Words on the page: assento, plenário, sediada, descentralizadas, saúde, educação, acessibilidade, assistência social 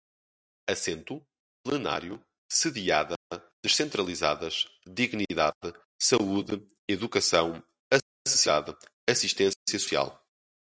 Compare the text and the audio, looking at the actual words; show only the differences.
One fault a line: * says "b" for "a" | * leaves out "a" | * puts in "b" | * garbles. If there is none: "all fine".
* puts in "dignidade"